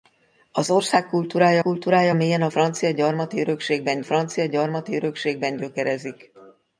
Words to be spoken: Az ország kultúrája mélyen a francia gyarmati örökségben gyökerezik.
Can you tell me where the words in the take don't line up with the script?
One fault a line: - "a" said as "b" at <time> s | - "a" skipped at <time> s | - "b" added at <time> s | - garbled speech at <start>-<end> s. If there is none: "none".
- "kultúrája" added at 1.6 s
- "francia gyarmati örökségben" added at 4.0 s